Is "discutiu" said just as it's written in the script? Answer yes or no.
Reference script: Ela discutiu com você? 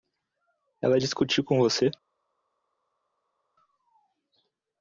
yes